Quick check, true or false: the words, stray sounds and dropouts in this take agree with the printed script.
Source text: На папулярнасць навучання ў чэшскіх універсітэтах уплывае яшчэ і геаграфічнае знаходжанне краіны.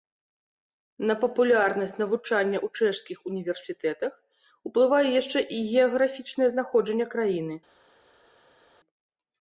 true